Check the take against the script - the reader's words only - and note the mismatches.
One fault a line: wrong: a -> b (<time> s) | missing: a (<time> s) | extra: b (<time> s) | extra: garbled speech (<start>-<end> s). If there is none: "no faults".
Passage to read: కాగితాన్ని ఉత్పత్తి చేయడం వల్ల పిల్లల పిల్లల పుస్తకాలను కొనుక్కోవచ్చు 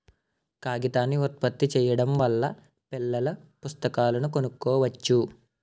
missing: పిల్లల (3.3 s)